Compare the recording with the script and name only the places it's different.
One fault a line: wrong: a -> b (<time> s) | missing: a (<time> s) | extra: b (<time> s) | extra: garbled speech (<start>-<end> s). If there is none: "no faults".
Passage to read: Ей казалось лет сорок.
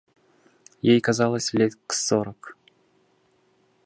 no faults